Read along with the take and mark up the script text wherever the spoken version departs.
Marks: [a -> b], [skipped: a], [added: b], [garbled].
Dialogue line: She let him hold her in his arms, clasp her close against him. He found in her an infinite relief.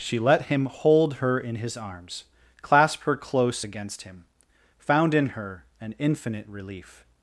She let him hold her in his arms, clasp her close against him. [skipped: He] found in her an infinite relief.